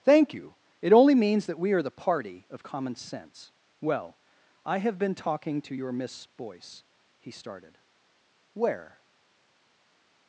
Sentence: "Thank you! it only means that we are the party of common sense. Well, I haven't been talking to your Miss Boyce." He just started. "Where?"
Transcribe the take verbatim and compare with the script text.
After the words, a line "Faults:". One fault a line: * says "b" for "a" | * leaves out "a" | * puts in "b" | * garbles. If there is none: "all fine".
"Thank you! it only means that we are the party of common sense. Well, I have been talking to your Miss Boyce." He started. "Where?"
Faults:
* says "have" for "haven't"
* leaves out "just"